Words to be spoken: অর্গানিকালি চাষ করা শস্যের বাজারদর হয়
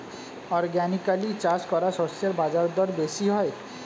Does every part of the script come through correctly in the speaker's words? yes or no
no